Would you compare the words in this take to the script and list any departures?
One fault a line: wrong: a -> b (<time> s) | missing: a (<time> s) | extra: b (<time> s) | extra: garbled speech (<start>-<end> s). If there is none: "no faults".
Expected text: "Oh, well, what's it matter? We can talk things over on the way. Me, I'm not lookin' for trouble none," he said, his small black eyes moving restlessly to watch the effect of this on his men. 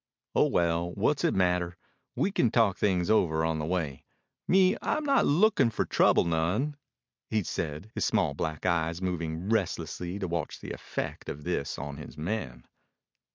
no faults